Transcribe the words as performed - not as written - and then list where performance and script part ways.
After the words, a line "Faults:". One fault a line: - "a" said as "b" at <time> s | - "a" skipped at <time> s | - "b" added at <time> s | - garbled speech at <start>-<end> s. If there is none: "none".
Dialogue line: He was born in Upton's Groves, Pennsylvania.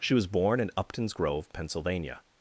She was born in Upton's Grove, Pennsylvania.
Faults:
- "He" said as "She" at 0.0 s
- "Groves" said as "Grove" at 1.1 s